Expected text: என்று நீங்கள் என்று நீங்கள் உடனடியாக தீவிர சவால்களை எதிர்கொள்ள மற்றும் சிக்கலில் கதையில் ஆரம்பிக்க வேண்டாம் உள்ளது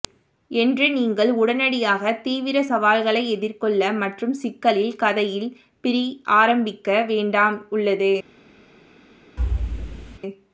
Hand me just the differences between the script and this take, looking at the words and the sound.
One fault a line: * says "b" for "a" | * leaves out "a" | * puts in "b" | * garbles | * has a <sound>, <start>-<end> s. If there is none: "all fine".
* leaves out "என்று நீங்கள்"
* puts in "பிரி"
* has a thud, 9.4-10.2 s